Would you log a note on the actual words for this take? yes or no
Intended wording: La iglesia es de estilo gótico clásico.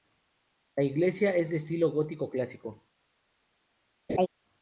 no